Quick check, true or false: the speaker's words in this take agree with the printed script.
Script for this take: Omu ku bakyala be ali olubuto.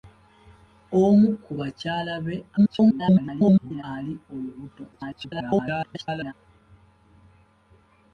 false